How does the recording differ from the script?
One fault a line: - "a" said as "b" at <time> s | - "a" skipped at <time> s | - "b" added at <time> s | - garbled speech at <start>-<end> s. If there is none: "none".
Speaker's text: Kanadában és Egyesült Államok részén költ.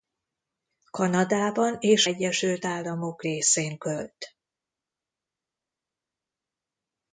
none